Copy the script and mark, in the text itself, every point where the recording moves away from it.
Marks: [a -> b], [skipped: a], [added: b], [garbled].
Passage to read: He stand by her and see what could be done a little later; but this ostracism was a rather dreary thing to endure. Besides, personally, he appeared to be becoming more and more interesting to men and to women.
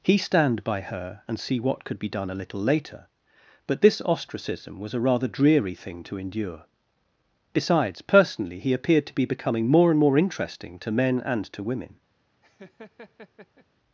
He stand by her and see what could be done a little later; but this ostracism was a rather dreary thing to endure. Besides, personally, he appeared to be becoming more and more interesting to men and to women.